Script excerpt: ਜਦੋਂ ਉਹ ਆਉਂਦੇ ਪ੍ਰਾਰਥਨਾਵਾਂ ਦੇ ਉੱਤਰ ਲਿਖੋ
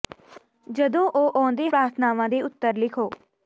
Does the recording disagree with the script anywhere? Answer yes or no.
no